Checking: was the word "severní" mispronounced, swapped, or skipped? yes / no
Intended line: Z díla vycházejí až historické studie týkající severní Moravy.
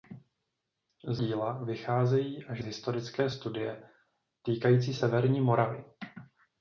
no